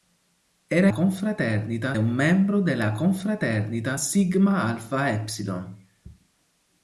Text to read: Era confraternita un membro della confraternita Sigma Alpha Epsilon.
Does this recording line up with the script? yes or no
yes